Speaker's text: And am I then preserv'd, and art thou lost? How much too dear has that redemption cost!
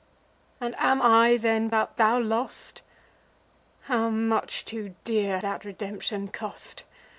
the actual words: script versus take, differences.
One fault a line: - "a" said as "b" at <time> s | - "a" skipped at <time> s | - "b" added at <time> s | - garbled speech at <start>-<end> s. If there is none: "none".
- "preserv'd and" skipped at 1.7 s
- "has" skipped at 5.4 s